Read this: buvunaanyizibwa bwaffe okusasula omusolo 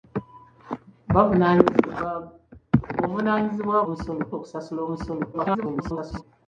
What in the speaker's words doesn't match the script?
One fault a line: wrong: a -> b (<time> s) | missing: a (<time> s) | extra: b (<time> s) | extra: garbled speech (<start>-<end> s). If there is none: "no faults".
wrong: bwaffe -> omusolo (3.8 s)
extra: garbled speech (5.3-6.2 s)